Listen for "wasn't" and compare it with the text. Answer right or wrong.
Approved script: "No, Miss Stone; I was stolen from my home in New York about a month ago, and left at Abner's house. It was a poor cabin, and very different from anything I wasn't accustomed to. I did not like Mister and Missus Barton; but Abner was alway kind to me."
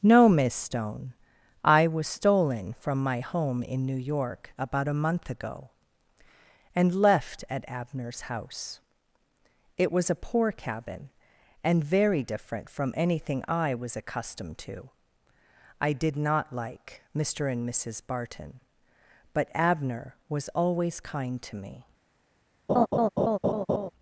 wrong